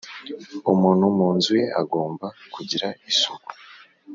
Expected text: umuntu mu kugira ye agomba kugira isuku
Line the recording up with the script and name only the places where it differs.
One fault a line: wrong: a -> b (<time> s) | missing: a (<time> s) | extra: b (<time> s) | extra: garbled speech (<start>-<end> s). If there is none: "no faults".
wrong: kugira -> nzu (1.4 s)